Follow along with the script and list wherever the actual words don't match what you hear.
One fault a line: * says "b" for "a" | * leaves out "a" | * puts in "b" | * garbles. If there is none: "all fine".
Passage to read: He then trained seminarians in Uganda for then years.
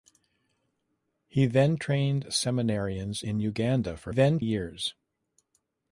all fine